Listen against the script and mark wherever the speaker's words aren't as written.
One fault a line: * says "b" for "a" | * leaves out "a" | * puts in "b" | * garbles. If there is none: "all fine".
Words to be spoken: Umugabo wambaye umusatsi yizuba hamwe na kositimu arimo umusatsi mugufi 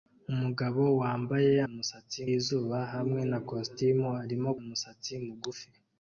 all fine